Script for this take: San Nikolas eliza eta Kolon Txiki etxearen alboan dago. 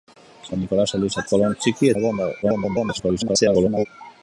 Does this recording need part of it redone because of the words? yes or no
yes